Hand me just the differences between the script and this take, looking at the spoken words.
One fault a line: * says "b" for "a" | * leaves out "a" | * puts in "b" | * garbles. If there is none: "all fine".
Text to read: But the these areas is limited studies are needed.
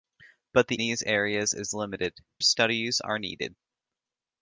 all fine